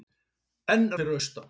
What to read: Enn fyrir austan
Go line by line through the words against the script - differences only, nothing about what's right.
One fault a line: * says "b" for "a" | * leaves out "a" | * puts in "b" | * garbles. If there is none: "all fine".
all fine